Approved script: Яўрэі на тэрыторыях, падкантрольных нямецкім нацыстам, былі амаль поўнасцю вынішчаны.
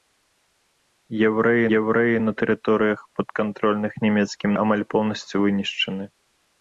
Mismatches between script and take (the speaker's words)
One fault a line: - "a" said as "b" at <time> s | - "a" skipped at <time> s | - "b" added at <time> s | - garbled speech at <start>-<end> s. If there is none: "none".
- "яўрэі" added at 1.8 s
- "нацыстам былі" skipped at 4.5 s